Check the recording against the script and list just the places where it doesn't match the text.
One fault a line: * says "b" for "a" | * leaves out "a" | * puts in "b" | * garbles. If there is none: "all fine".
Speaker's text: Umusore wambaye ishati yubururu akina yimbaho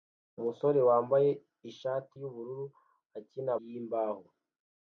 all fine